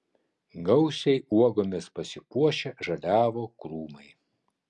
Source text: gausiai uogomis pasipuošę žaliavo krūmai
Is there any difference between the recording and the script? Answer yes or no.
no